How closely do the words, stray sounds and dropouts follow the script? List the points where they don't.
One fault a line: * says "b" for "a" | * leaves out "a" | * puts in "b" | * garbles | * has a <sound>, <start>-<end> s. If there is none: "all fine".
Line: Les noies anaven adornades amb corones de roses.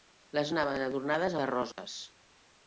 * leaves out "noies"
* leaves out "amb corones"
* has a dropout, 1.7-1.8 s